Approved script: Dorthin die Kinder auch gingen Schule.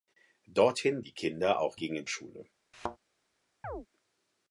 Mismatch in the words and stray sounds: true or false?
true